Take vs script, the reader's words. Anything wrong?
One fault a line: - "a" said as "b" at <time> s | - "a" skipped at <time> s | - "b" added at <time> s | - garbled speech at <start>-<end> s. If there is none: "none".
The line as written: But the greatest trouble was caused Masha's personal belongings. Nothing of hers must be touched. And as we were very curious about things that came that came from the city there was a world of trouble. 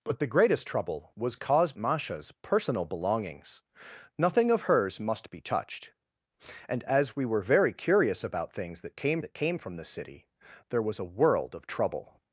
none